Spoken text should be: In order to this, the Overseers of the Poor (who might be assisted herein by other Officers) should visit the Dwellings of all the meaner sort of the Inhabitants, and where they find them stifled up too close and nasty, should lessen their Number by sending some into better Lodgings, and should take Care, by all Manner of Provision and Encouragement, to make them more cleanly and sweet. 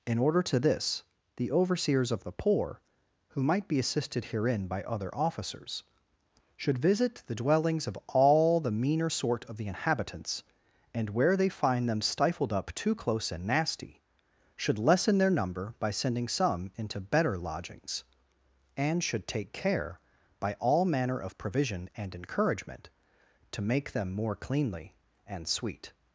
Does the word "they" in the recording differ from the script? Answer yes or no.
no